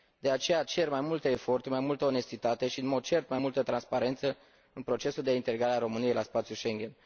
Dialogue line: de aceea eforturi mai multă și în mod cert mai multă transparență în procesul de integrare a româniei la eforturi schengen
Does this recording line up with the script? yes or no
no